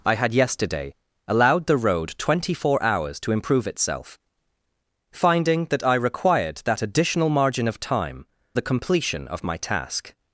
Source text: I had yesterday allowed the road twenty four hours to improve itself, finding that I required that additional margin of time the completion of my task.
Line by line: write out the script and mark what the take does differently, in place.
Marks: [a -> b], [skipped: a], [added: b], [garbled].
I had yesterday allowed the road twenty four hours to improve itself, finding that I required that additional margin of time the completion of my task.